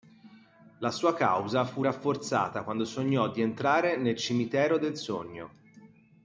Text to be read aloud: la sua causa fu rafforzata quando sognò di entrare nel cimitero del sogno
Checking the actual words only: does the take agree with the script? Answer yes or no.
yes